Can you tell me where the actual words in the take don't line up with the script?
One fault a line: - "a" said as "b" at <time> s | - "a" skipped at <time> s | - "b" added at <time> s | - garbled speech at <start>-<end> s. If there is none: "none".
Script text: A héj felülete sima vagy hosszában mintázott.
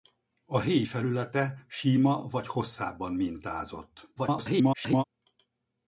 - garbled speech at 4.2-5.0 s